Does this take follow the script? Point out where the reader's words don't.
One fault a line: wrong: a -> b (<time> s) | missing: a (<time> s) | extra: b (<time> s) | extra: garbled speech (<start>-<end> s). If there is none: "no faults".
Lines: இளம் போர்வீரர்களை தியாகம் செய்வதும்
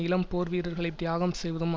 no faults